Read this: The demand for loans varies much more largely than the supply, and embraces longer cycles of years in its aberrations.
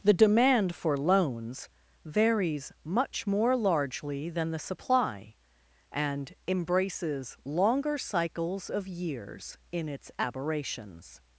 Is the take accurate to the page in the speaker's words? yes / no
yes